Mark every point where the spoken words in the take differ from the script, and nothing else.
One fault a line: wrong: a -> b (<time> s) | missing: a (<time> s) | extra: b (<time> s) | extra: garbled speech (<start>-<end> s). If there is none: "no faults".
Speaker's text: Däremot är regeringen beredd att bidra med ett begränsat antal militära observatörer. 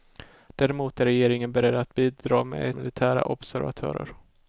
missing: ett begränsat antal (2.7 s)